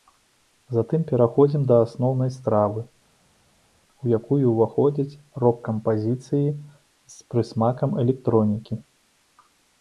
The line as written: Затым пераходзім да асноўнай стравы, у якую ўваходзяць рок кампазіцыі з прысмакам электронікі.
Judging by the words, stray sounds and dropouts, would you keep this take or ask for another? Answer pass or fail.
pass